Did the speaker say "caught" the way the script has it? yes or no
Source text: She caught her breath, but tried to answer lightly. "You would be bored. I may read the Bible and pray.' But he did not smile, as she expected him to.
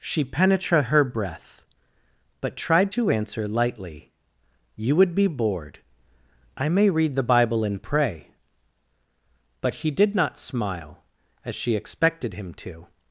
no